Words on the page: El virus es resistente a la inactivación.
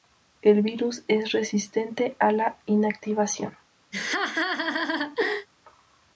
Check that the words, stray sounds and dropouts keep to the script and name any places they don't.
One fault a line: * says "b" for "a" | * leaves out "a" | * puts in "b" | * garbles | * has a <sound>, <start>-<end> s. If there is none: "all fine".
* has a laugh, 3.9-5.5 s